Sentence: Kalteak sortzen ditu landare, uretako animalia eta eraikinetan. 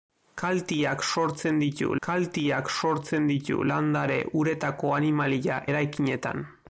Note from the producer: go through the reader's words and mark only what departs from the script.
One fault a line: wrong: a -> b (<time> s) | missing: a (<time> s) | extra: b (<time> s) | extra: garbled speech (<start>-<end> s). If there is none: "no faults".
extra: kalteak sortzen ditu (2.1 s)
missing: eta (5.6 s)